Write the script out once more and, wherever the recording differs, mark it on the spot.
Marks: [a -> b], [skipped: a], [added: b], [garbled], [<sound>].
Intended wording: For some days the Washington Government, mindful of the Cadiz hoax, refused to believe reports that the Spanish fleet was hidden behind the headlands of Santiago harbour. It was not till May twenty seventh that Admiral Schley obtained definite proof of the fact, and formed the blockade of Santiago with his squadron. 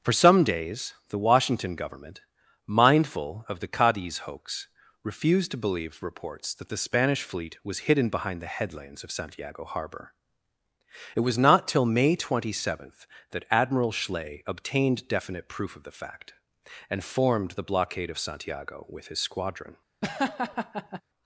For some days the Washington Government, mindful of the Cadiz hoax, refused to believe reports that the Spanish fleet was hidden behind the headlands of Santiago harbour. It was not till May twenty seventh that Admiral Schley obtained definite proof of the fact, and formed the blockade of Santiago with his squadron. [laugh]